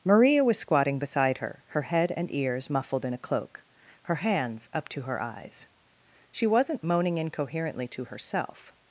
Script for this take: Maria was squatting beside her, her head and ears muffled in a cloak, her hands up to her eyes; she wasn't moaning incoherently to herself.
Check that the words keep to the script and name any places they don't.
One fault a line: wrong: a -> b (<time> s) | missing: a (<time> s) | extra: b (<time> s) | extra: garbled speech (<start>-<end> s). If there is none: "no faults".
no faults